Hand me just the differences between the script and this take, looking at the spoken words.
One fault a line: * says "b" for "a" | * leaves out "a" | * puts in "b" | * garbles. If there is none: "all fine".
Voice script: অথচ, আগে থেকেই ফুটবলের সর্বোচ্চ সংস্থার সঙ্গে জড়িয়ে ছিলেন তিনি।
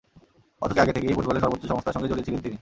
all fine